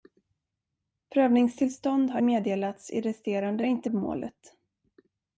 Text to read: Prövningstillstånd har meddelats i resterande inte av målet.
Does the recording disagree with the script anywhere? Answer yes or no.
no